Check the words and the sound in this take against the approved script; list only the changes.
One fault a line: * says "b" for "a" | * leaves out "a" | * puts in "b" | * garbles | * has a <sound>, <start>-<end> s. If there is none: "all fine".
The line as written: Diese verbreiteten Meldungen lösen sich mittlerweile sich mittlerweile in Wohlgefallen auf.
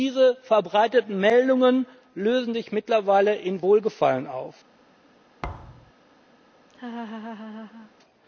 * leaves out "sich mittlerweile"
* has a thud, 5.4-5.9 s
* has a laugh, 6.7-7.9 s